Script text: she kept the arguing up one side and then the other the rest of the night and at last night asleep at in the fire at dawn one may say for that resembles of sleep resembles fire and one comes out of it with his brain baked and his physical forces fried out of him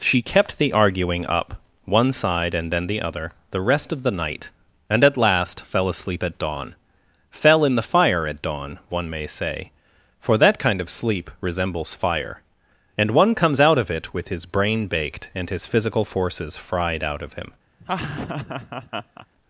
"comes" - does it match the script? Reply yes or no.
yes